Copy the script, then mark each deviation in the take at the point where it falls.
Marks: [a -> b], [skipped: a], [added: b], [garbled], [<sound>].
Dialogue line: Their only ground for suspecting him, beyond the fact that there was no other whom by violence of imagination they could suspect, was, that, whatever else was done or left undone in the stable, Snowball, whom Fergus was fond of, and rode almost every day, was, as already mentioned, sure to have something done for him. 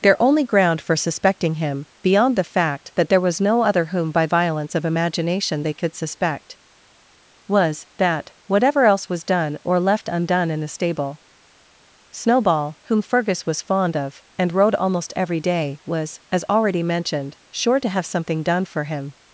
Their only ground for suspecting him, beyond the fact that there was no other whom by violence of imagination they could suspect, was, that, whatever else was done or left undone in the stable, Snowball, whom Fergus was fond of, and rode almost every day, was, as already mentioned, sure to have something done for him.